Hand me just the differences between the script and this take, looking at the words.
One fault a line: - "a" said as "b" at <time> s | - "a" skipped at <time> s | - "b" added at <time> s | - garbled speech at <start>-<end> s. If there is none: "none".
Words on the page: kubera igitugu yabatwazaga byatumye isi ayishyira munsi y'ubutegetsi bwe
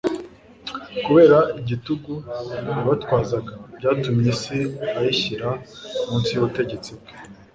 none